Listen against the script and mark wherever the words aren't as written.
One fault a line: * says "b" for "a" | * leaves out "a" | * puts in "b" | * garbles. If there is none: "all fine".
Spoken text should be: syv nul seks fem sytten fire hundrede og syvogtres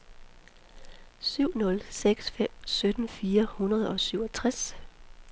all fine